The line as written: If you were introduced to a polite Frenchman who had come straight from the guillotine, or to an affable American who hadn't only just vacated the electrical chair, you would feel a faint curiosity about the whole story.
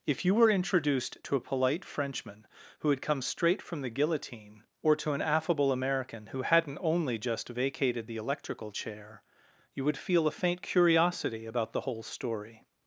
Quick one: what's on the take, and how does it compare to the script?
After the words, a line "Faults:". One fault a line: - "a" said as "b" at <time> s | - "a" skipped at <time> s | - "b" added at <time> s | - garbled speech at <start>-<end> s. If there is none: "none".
If you were introduced to a polite Frenchman who had come straight from the guillotine, or to an affable American who hadn't only just vacated the electrical chair, you would feel a faint curiosity about the whole story.
Faults:
none